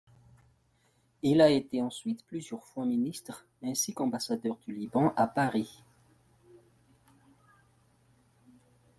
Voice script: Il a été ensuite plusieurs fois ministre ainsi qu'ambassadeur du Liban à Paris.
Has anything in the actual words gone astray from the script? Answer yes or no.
no